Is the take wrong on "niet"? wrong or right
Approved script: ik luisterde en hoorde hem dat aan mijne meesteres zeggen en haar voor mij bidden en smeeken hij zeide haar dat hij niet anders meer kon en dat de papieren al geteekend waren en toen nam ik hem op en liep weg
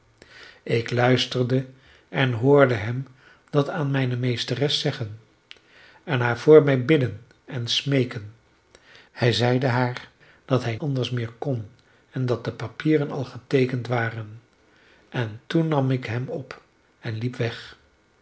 wrong